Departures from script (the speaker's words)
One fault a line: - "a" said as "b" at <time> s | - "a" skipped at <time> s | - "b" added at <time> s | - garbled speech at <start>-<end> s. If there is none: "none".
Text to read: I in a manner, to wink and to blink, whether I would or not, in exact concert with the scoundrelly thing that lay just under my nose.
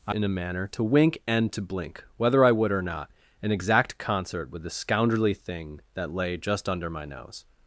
none